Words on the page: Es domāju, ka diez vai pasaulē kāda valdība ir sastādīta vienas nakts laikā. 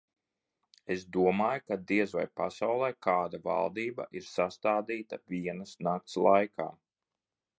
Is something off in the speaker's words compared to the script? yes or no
no